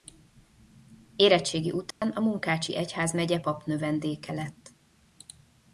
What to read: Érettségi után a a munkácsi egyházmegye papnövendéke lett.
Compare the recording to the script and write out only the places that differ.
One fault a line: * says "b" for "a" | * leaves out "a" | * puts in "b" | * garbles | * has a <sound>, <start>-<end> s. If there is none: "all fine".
* has a dropout, 1.9-2.0 s
* leaves out "a"